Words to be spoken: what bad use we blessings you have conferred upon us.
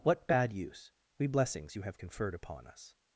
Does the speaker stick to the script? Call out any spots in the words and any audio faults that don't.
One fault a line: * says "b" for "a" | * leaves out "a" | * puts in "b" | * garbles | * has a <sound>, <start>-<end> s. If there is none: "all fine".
all fine